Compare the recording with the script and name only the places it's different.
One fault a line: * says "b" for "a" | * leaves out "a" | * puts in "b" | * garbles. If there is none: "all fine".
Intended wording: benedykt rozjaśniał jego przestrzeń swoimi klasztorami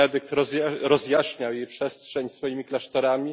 * says "jej" for "jego"